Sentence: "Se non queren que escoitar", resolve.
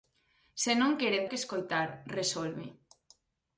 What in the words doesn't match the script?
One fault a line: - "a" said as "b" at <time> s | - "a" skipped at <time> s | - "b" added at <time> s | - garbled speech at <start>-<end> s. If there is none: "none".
none